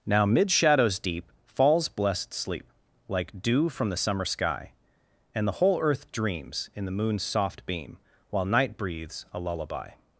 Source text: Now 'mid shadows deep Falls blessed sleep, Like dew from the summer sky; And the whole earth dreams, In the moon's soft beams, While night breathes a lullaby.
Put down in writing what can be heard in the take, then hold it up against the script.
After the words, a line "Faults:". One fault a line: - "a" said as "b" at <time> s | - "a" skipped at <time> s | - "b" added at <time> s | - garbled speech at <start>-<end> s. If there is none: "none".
Now 'mid shadows deep Falls blessed sleep, Like dew from the summer sky; And the whole earth dreams, In the moon's soft beam, While night breathes a lullaby.
Faults:
- "beams" said as "beam" at 7.7 s